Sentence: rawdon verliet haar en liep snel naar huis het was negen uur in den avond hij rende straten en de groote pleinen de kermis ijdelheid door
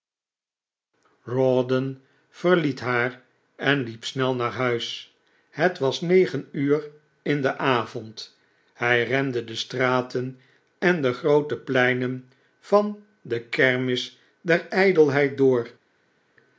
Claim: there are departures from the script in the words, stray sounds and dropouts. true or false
true